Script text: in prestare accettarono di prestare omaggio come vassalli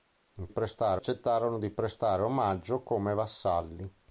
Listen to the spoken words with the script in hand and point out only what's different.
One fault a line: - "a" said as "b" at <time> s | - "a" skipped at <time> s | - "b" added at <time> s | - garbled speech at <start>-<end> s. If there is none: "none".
none